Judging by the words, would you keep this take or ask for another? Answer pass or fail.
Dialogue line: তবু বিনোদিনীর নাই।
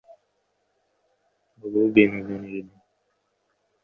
pass